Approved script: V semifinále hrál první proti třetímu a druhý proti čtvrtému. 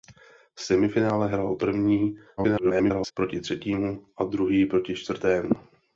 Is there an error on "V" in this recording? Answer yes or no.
no